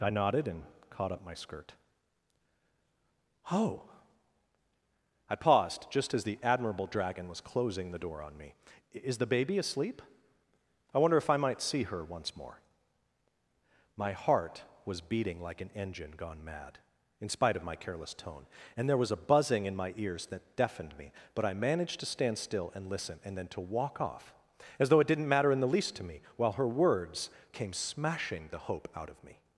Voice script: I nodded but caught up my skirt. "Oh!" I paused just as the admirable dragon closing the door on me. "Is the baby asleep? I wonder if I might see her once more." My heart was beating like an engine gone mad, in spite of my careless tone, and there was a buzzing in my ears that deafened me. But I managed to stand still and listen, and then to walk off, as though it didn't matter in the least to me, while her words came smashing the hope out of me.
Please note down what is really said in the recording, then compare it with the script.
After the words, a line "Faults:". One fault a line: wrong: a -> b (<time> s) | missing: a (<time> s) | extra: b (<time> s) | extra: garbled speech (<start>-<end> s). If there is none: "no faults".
I nodded and caught up my skirt. "Oh!" I paused just as the admirable dragon was closing the door on me. "Is the baby asleep? I wonder if I might see her once more." My heart was beating like an engine gone mad, in spite of my careless tone, and there was a buzzing in my ears that deafened me. But I managed to stand still and listen, and then to walk off, as though it didn't matter in the least to me, while her words came smashing the hope out of me.
Faults:
wrong: but -> and (0.5 s)
extra: was (7.3 s)